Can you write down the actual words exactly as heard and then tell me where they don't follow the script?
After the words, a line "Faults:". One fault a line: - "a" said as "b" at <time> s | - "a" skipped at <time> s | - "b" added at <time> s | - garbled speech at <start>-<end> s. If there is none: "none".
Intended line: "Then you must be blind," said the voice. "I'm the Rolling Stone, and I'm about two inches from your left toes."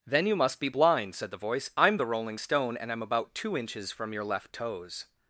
"Then you must be blind," said the voice. "I'm the Rolling Stone, and I'm about two inches from your left toes."
Faults:
none